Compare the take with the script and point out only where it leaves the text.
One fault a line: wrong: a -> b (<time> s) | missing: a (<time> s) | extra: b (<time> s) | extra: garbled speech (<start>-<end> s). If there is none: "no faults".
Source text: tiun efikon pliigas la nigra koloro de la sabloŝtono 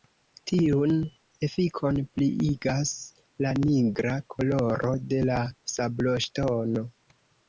no faults